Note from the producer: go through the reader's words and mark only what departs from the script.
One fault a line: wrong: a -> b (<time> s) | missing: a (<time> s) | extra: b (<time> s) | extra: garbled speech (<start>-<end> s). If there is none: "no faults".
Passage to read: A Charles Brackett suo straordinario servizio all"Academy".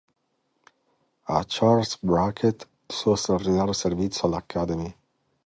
no faults